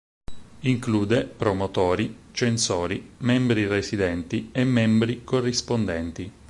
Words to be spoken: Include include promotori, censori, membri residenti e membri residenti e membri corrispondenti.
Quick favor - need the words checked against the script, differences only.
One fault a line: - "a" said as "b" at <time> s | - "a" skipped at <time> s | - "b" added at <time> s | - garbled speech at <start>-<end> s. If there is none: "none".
- "include" skipped at 1.2 s
- "residenti e membri" skipped at 5.3 s